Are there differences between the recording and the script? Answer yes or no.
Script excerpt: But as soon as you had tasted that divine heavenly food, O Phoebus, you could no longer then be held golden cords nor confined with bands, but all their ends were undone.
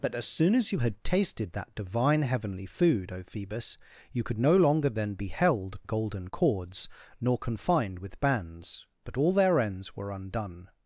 no